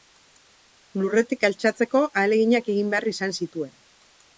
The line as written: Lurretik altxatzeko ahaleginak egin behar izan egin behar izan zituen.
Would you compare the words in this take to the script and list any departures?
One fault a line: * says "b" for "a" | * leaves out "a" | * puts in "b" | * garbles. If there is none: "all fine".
* leaves out "egin behar izan"